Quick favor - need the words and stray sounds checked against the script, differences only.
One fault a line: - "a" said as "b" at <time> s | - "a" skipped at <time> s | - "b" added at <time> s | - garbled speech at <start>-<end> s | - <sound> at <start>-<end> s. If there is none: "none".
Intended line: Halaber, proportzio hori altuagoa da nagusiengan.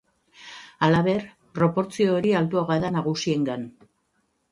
none